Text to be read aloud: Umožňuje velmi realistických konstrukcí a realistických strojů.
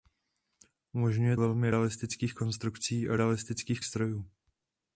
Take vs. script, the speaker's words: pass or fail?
pass